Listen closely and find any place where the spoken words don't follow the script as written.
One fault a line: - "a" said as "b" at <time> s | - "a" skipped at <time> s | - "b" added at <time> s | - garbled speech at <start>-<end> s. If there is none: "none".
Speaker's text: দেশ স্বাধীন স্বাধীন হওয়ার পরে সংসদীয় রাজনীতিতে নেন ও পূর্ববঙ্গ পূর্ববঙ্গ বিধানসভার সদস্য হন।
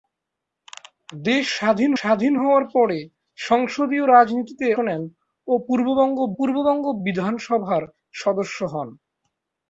none